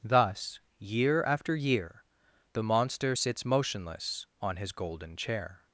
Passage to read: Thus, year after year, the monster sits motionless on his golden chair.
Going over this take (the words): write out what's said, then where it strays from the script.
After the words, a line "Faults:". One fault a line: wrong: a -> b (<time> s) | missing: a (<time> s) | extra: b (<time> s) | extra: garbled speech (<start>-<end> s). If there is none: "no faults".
Thus, year after year, the monster sits motionless on his golden chair.
Faults:
no faults